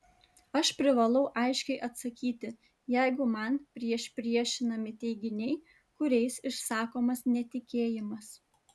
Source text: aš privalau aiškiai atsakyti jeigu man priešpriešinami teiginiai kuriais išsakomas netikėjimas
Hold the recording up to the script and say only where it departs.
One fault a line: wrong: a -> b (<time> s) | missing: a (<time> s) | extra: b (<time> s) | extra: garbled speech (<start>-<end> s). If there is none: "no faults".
no faults